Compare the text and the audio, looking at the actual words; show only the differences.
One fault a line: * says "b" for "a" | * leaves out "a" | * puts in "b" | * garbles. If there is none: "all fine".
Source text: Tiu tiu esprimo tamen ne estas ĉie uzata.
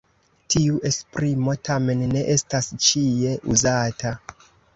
* leaves out "tiu"